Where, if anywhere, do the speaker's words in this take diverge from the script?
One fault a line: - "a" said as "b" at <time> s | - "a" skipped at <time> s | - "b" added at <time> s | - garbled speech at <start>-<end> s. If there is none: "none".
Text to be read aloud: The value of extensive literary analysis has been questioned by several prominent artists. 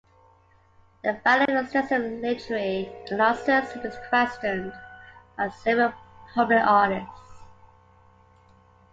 none